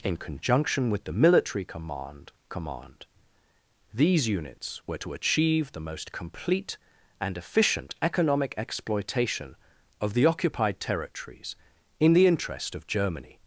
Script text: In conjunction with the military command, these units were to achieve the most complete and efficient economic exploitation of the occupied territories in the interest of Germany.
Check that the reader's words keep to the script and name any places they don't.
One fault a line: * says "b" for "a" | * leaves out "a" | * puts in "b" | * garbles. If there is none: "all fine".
* puts in "command"